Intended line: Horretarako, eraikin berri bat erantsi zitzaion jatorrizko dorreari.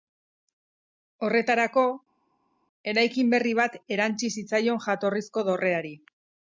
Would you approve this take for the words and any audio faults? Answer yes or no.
yes